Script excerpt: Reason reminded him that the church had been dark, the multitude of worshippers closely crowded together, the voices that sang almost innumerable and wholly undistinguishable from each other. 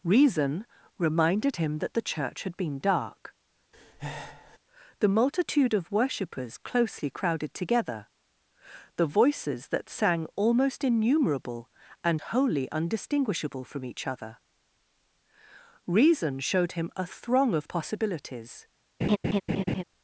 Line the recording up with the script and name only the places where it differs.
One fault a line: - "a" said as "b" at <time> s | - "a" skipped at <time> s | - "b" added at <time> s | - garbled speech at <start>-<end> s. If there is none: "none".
- "Reason showed him a throng of possibilities" added at 15.9 s